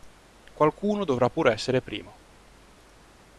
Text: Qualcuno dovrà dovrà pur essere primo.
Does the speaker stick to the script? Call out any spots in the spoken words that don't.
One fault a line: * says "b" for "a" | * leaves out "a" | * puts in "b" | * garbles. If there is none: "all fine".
* leaves out "dovrà"